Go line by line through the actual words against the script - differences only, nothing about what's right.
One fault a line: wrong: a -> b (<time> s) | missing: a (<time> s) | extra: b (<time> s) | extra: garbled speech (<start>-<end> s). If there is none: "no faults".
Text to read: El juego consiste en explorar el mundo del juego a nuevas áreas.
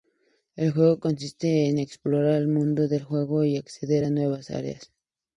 extra: y acceder (3.4 s)